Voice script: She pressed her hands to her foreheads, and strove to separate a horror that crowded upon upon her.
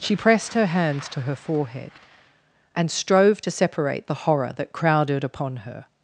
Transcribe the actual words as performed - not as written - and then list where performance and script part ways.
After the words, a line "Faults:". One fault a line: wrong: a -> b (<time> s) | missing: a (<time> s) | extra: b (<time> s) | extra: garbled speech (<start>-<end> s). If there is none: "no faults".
She pressed her hands to her forehead, and strove to separate the horror that crowded upon her.
Faults:
wrong: foreheads -> forehead (1.3 s)
wrong: a -> the (4.1 s)
missing: upon (5.6 s)